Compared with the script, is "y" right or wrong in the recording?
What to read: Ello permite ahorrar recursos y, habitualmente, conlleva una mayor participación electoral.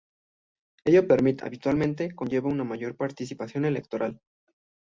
wrong